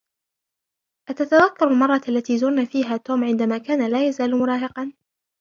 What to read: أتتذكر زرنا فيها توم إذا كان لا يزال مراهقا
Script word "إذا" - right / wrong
wrong